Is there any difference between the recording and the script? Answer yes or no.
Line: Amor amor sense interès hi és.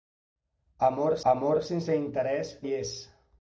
no